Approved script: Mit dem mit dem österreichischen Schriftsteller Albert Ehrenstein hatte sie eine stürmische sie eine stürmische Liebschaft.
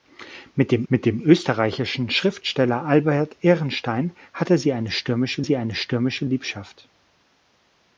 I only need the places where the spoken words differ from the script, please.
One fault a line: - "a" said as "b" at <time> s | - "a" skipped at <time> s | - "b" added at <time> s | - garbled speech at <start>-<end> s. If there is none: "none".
none